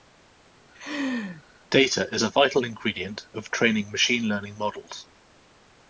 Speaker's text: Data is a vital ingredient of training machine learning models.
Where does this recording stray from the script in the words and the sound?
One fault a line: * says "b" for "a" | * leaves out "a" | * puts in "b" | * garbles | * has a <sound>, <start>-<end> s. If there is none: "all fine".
* has a laugh, 0.7-1.4 s